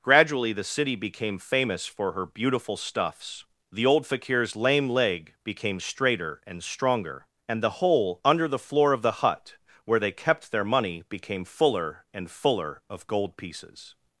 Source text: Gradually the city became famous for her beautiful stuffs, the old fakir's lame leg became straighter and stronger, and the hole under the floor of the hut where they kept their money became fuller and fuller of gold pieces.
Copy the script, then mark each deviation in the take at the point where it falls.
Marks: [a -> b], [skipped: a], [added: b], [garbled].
Gradually the city became famous for her beautiful stuffs, the old fakir's lame leg became straighter and stronger, and the hole under the floor of the hut where they kept their money became fuller and fuller of gold pieces.